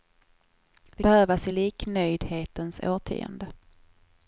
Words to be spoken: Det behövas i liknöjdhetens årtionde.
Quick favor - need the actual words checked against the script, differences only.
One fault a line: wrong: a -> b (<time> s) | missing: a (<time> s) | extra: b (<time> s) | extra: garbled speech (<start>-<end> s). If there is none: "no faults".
no faults